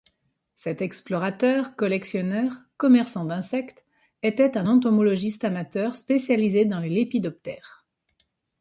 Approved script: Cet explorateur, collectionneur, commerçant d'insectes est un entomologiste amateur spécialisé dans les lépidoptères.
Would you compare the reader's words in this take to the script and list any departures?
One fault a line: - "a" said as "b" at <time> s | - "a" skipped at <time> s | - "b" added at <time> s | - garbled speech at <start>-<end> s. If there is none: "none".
- "est" said as "était" at 4.2 s